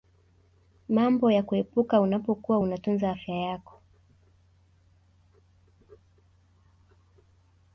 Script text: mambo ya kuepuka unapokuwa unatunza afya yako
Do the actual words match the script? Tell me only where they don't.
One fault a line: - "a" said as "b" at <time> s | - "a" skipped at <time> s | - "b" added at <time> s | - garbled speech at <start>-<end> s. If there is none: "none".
none